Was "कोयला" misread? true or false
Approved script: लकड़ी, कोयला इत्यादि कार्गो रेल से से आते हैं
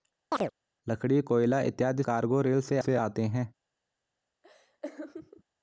false